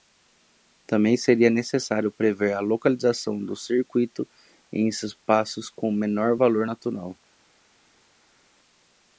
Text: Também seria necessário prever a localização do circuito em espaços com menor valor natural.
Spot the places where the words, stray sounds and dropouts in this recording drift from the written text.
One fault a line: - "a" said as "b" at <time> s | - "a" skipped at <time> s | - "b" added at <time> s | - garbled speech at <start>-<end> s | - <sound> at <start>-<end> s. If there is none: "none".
none